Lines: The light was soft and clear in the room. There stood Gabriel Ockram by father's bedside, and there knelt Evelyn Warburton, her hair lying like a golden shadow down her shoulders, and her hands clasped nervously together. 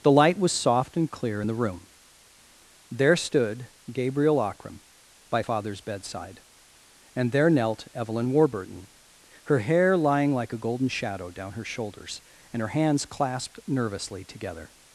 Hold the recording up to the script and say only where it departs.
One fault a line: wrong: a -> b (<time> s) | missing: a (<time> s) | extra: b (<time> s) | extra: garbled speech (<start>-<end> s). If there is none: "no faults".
no faults